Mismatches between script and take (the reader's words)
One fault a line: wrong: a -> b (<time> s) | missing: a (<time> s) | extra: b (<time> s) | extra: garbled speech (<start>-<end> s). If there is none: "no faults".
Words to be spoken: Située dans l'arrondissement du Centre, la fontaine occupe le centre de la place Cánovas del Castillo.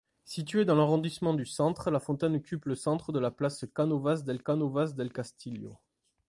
extra: Cánovas del (4.4 s)